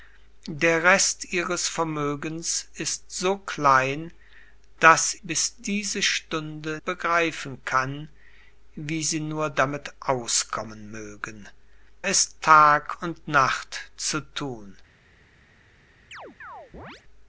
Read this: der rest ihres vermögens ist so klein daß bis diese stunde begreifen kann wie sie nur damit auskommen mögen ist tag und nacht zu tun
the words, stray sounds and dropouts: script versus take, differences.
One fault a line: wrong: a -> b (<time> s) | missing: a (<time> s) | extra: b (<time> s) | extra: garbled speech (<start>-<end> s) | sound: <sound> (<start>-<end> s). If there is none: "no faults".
sound: chirp (16.1-17.0 s)